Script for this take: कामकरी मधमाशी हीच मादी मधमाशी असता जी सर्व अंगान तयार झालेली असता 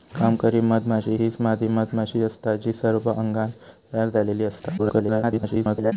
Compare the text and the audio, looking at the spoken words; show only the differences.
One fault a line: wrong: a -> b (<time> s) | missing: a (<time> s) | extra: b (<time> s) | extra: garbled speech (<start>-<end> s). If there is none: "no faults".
extra: garbled speech (4.8-5.9 s)